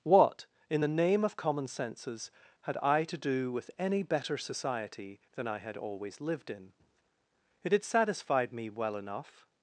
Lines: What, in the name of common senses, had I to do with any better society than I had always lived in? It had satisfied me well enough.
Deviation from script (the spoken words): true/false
false